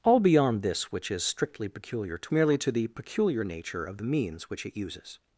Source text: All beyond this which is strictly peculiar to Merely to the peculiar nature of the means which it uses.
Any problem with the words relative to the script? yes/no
no